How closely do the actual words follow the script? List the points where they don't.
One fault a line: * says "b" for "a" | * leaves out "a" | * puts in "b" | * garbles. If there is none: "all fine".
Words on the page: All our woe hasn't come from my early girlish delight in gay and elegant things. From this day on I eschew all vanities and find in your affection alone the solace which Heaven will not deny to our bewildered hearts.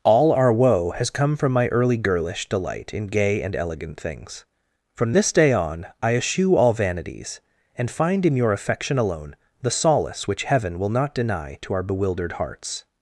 * says "has" for "hasn't"